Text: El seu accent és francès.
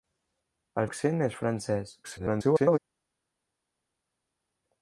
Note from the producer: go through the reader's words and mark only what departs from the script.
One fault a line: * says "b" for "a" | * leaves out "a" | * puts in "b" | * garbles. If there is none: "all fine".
* leaves out "seu"
* garbles